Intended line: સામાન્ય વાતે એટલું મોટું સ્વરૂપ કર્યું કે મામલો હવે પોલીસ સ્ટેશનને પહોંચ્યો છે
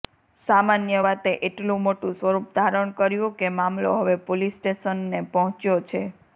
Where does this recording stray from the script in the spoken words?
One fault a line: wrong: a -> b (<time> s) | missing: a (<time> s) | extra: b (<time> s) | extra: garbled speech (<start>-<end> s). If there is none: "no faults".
extra: ધારણ (2.6 s)